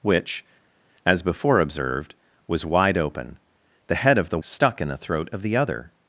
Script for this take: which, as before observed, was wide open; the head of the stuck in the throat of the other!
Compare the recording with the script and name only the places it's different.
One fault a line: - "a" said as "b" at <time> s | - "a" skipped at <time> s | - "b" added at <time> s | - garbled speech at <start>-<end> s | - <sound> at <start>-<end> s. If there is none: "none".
none